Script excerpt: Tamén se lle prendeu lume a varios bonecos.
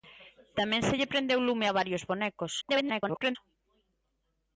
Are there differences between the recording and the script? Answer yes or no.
yes